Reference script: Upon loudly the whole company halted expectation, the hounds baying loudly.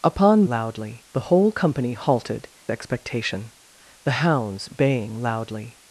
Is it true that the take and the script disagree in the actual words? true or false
false